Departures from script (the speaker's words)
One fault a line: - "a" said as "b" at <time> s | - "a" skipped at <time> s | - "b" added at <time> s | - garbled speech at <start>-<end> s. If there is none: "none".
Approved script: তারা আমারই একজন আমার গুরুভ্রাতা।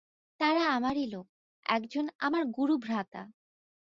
- "লোক" added at 1.1 s